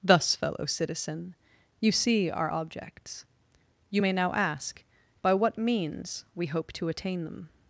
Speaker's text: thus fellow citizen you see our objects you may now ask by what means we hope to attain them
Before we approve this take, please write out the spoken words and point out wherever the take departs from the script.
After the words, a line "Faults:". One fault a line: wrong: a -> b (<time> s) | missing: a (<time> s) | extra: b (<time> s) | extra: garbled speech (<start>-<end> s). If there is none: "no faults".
thus fellow citizen you see our objects you may now ask by what means we hope to attain them
Faults:
no faults